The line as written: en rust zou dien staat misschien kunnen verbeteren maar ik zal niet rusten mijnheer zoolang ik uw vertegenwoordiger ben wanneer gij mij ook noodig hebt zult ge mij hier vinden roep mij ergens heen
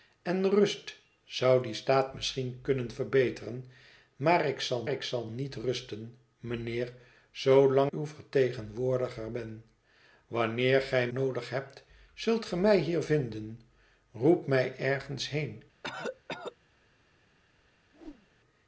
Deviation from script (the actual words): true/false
true